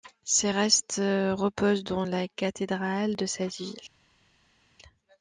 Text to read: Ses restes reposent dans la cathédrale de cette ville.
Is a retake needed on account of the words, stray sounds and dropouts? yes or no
no